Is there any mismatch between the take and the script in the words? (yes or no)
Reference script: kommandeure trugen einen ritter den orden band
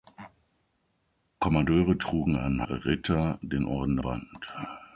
no